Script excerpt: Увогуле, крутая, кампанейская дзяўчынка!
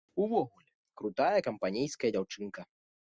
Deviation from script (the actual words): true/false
false